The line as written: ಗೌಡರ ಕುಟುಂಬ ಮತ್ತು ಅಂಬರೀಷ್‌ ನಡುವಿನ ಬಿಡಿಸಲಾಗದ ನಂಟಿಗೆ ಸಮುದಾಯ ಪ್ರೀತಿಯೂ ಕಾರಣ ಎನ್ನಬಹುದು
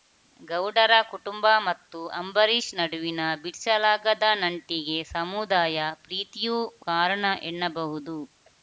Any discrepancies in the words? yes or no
no